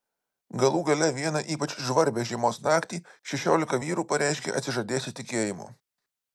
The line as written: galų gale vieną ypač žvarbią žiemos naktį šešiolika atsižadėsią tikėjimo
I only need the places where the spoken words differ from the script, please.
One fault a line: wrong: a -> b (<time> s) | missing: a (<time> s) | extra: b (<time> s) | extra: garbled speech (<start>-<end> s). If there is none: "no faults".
extra: vyrų pareiškė (3.9 s)